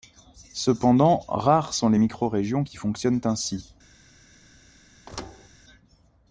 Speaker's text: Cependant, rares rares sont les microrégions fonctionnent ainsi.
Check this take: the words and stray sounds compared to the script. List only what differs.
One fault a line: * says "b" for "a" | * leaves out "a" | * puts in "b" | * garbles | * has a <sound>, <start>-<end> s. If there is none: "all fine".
* leaves out "rares"
* puts in "qui"
* has a thud, 5.1-5.5 s